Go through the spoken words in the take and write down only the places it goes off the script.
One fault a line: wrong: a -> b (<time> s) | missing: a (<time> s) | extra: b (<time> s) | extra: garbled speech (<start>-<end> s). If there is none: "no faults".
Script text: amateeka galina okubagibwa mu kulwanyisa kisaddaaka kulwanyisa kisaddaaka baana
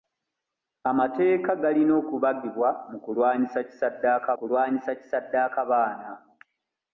no faults